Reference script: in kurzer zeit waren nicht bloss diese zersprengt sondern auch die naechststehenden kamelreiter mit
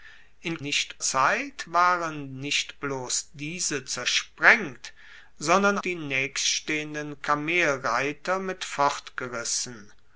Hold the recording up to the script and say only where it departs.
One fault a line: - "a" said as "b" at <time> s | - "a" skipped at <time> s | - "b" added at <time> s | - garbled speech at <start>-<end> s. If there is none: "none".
- "kurzer" said as "nicht" at 0.6 s
- "auch" skipped at 5.8 s